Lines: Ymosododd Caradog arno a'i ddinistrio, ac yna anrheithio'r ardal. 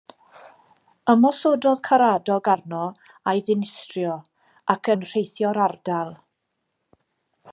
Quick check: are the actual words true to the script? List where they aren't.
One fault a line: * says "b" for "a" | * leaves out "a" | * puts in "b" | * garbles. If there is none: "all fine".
* leaves out "yna"